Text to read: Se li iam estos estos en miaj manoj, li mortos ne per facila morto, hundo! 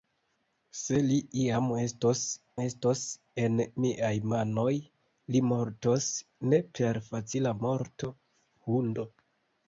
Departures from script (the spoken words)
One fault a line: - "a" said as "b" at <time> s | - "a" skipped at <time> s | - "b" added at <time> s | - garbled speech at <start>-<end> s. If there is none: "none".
none